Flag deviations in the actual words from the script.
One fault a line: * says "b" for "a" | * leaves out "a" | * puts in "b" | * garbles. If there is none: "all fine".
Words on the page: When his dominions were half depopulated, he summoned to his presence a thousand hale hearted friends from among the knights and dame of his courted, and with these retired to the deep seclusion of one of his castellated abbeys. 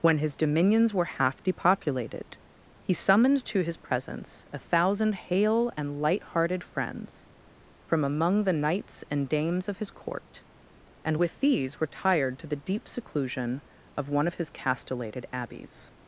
* puts in "and light"
* says "dames" for "dame"
* says "court" for "courted"